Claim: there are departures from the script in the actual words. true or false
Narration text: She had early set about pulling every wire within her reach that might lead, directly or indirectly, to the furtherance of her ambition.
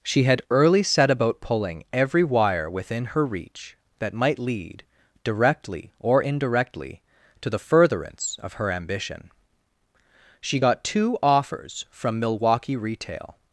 true